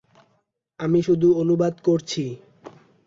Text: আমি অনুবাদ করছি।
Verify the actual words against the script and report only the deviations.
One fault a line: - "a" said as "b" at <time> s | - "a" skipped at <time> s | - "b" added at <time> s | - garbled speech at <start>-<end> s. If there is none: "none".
- "শুধু" added at 1.0 s